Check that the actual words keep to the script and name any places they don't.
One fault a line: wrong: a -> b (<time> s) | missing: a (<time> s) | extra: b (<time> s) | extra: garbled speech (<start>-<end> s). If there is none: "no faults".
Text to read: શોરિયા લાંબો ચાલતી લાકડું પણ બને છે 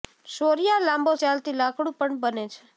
no faults